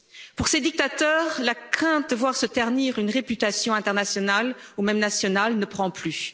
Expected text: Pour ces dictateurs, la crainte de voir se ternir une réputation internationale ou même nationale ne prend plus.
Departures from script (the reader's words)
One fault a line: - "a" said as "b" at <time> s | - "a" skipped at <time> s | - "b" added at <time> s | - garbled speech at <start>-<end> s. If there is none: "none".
none